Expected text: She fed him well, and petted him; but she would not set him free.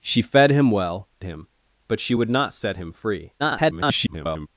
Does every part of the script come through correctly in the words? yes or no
no